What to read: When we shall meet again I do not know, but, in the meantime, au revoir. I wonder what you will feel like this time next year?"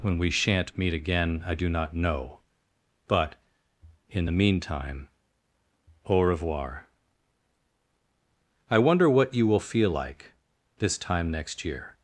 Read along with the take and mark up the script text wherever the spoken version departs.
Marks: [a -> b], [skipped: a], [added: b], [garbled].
When we [shall -> shan't] meet again I do not know, but, in the meantime, au revoir. I wonder what you will feel like this time next year?"